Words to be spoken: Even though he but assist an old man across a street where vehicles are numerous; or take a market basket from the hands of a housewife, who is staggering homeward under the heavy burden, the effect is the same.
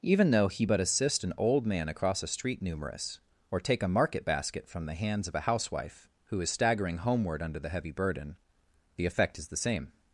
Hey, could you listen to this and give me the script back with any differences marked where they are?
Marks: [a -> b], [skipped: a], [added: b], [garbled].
Even though he but assist an old man across a street [skipped: where vehicles are] numerous; or take a market basket from the hands of a housewife, who is staggering homeward under the heavy burden, the effect is the same.